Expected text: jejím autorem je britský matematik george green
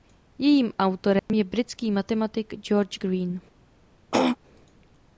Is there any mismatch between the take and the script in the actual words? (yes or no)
no